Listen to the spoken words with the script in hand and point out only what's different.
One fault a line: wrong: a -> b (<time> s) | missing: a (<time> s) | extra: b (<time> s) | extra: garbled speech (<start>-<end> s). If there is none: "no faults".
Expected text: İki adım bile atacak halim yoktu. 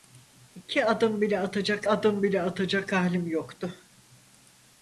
extra: adım bile atacak (1.9 s)